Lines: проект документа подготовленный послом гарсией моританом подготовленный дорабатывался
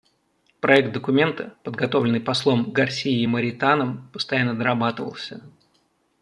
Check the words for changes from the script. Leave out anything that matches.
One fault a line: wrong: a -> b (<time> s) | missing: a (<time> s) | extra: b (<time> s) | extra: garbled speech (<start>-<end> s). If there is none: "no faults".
wrong: подготовленный -> постоянно (4.1 s)